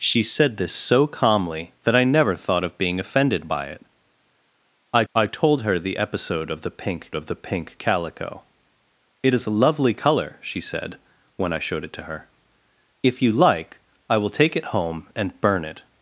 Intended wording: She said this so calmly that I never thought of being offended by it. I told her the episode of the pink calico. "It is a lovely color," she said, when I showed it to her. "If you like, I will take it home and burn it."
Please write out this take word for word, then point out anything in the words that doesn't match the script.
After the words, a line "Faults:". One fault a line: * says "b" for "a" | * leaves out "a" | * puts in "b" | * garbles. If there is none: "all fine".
She said this so calmly that I never thought of being offended by it. I I told her the episode of the pink of the pink calico. "It is a lovely color," she said, when I showed it to her. "If you like, I will take it home and burn it."
Faults:
* puts in "I"
* puts in "of the pink"